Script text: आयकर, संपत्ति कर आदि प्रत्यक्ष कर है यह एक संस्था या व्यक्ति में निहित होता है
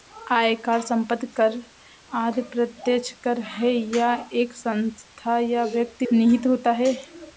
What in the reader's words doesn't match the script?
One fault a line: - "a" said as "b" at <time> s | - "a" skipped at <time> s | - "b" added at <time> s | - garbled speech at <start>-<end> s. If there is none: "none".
- "में" skipped at 6.1 s